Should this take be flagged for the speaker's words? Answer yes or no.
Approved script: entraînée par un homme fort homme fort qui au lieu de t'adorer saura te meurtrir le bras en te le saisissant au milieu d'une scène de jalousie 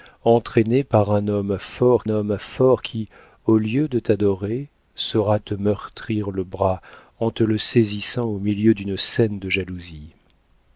no